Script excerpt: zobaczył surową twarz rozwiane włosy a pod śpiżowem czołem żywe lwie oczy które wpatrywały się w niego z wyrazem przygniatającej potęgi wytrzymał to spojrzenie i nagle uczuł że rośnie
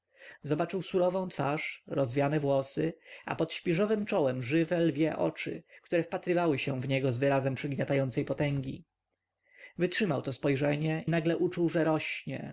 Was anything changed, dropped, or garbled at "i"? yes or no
yes